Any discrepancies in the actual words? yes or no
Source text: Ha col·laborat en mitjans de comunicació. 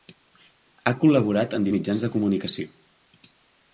no